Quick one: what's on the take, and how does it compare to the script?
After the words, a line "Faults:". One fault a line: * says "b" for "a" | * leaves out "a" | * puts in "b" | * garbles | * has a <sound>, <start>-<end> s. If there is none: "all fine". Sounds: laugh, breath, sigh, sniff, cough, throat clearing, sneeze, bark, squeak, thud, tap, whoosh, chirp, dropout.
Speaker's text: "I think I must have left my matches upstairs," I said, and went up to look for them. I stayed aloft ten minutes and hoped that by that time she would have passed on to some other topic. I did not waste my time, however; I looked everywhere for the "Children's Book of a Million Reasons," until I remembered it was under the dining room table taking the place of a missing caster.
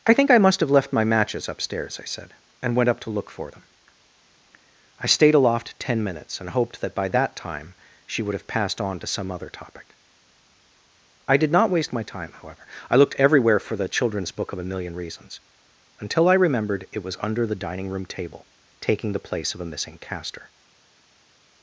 "I think I must have left my matches upstairs," I said, and went up to look for them. I stayed aloft ten minutes and hoped that by that time she would have passed on to some other topic. I did not waste my time, however; I looked everywhere for the "Children's Book of a Million Reasons," until I remembered it was under the dining room table taking the place of a missing caster.
Faults:
all fine